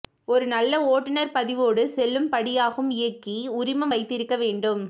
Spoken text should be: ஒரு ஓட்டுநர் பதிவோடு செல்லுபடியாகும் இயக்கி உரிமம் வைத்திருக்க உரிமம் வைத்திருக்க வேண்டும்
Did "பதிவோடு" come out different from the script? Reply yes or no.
no